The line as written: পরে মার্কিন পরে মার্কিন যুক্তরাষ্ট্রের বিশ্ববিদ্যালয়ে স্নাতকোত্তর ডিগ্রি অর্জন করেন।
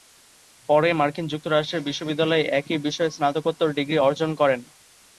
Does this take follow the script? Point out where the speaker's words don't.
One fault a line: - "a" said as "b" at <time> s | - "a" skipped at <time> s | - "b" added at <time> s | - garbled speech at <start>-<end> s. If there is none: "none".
- "পরে মার্কিন যুক্তরাষ্ট্রের বিশ্ববিদ্যালয়ে" said as "যুক্তরাষ্ট্রের বিশ্ববিদ্যালয়ে একই বিষয়ে" at 1.3 s